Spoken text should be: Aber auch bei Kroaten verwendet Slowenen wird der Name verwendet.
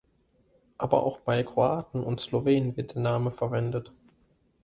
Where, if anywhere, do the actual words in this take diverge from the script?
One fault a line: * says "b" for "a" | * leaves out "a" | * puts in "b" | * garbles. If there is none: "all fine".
* says "und" for "verwendet"